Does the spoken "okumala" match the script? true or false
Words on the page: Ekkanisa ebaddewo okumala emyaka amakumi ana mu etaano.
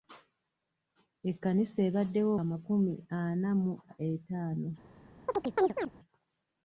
false